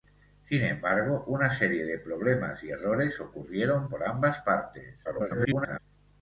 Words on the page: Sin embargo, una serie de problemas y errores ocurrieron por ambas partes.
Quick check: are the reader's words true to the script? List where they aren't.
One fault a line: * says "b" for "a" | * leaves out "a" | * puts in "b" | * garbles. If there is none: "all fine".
* garbles